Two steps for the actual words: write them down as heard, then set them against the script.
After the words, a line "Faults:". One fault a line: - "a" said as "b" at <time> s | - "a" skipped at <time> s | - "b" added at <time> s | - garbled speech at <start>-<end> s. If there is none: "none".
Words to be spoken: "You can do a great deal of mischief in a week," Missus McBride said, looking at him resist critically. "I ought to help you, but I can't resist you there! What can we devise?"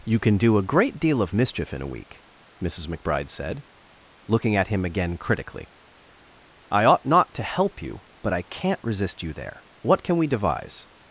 "You can do a great deal of mischief in a week," Missus McBride said, looking at him again critically. "I ought not to help you, but I can't resist you there! What can we devise?"
Faults:
- "resist" said as "again" at 4.8 s
- "not" added at 7.0 s